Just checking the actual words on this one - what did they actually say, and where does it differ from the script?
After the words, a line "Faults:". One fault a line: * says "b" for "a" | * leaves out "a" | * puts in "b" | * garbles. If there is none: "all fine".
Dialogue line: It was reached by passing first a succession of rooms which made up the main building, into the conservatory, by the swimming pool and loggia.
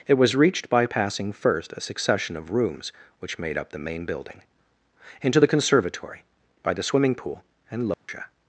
It was reached by passing first a succession of rooms which made up the main building, into the conservatory, by the swimming pool and loggia.
Faults:
all fine